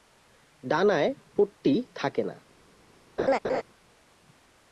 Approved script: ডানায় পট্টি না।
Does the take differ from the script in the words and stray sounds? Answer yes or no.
yes